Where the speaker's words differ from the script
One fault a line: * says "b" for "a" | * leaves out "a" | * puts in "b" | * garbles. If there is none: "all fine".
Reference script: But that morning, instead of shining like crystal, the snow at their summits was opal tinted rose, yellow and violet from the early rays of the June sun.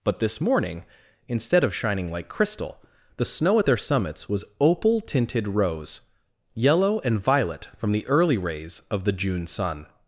* says "this" for "that"